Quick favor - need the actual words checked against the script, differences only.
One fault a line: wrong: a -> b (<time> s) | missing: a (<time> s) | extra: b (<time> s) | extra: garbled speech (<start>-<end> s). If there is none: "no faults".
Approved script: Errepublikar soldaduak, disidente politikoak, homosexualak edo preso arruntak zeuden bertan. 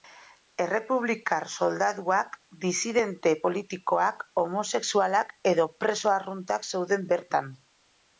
no faults